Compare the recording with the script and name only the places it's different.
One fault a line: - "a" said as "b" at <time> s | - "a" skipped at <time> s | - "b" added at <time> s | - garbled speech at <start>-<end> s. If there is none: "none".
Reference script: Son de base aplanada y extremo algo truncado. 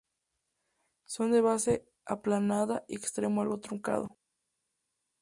none